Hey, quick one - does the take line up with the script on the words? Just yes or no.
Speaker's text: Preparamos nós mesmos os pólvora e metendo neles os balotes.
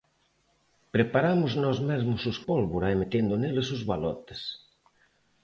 yes